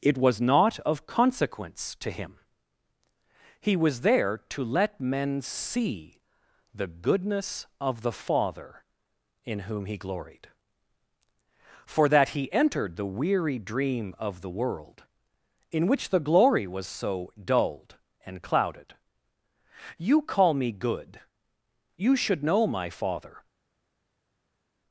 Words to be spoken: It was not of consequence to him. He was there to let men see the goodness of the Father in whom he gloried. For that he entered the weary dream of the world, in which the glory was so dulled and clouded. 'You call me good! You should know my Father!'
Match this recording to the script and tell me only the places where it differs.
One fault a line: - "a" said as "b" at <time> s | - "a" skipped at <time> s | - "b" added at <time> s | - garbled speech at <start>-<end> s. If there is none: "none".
none